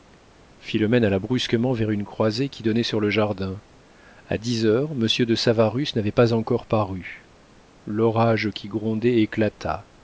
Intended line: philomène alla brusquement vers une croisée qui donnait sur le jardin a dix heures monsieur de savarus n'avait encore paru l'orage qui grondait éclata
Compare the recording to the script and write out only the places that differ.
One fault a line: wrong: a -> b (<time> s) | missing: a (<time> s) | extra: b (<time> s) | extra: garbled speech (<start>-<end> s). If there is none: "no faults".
extra: pas (6.1 s)